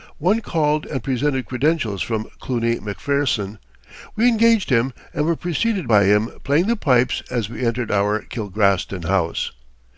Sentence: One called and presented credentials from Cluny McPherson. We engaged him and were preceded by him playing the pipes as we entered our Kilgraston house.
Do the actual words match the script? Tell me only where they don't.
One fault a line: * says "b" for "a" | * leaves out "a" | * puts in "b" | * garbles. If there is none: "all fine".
all fine